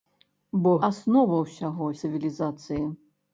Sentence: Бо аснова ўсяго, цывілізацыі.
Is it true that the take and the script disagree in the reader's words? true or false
false